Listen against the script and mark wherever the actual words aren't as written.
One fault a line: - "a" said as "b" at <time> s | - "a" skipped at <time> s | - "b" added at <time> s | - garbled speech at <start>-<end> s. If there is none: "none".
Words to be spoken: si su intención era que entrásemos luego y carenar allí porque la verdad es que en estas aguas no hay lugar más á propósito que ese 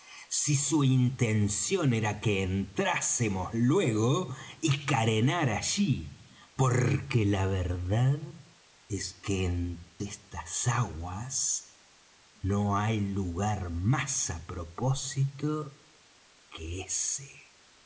none